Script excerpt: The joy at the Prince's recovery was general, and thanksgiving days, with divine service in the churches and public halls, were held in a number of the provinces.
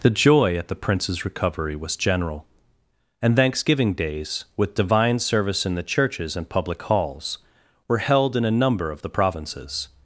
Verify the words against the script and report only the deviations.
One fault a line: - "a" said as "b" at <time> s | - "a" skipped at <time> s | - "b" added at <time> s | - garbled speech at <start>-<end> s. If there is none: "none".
none